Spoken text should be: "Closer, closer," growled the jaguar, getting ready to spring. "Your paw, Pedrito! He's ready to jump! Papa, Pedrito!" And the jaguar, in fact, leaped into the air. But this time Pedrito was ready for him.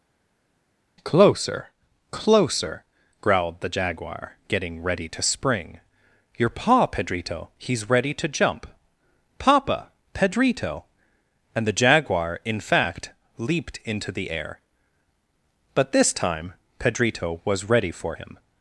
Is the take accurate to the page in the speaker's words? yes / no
yes